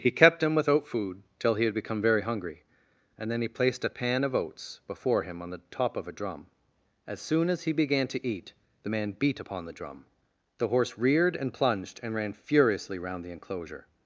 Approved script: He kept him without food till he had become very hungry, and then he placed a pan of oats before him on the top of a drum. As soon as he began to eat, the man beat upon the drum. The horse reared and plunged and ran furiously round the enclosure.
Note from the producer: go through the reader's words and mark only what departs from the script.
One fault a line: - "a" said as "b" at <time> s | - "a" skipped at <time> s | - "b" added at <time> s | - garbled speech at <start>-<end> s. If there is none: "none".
none